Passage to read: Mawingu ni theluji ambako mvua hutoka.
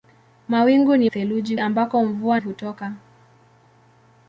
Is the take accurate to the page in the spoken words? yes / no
yes